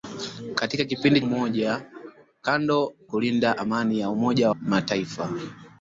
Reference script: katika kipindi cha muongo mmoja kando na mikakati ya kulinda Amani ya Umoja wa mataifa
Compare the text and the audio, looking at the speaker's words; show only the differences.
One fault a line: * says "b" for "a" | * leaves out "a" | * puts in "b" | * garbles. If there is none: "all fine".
* leaves out "cha muongo"
* leaves out "na mikakati ya"
* leaves out "wa"